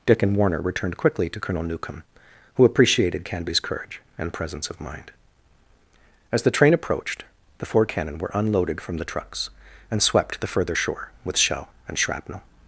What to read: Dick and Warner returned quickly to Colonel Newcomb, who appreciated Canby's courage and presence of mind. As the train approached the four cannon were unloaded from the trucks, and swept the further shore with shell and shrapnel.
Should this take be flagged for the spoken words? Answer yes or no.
no